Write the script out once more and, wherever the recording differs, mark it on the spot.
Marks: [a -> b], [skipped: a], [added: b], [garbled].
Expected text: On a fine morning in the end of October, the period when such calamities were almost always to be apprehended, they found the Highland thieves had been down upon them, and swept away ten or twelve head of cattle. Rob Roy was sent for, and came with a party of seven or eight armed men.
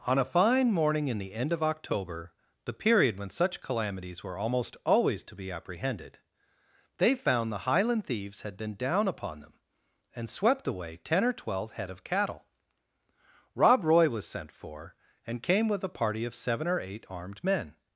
On a fine morning in the end of October, the period when such calamities were almost always to be apprehended, they found the Highland thieves had been down upon them, and swept away ten or twelve head of cattle. Rob Roy was sent for, and came with a party of seven or eight armed men.